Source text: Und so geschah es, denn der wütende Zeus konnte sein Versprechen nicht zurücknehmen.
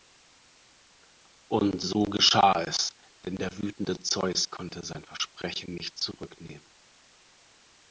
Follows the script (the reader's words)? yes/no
yes